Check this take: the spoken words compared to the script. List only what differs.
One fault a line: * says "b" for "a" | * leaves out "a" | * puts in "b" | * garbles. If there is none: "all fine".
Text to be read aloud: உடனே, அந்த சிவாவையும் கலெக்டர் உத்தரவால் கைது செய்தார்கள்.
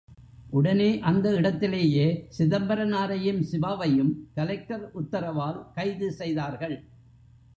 * puts in "இடத்திலேயே சிதம்பரனாரையும்"